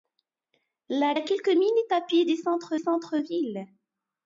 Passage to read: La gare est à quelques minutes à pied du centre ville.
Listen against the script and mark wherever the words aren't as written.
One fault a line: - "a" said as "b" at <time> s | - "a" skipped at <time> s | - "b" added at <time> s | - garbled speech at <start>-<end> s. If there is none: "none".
- "gare est" skipped at 1.1 s
- "centre" added at 2.7 s